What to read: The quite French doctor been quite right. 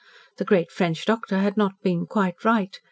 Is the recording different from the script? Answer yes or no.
yes